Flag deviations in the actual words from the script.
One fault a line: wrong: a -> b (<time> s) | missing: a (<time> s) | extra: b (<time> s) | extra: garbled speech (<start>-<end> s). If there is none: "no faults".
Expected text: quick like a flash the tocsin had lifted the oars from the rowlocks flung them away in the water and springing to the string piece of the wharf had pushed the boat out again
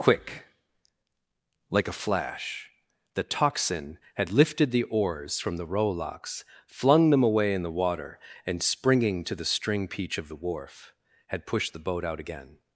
wrong: piece -> peach (9.9 s)